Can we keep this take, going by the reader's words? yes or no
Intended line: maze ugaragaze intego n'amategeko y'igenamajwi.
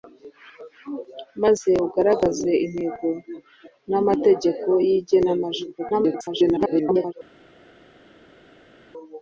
no